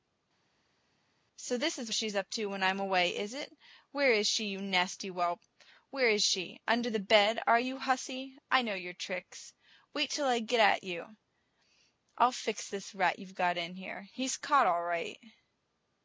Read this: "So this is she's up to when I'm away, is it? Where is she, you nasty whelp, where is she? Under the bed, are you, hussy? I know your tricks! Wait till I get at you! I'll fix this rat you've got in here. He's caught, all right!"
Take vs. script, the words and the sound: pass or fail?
pass